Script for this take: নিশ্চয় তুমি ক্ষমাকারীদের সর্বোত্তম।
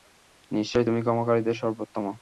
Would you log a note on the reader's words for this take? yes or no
no